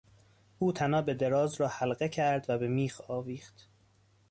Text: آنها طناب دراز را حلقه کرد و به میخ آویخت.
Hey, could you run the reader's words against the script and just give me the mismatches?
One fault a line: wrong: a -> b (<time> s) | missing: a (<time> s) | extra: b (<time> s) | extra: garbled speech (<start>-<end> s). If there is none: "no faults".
wrong: آنها -> او (0.6 s)